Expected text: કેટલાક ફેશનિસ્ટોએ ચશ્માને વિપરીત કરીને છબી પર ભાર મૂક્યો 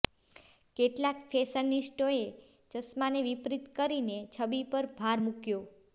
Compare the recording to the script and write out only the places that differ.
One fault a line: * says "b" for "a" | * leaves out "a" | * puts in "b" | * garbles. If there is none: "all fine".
all fine